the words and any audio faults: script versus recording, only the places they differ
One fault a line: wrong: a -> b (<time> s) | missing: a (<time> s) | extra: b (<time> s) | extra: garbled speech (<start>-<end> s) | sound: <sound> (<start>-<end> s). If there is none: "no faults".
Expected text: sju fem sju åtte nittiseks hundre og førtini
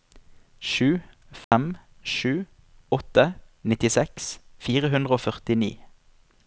sound: dropout (1.4-1.5 s)
extra: fire (4.7 s)